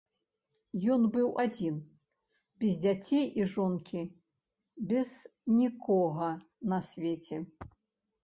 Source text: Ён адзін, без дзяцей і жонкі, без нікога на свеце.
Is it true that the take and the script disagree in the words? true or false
true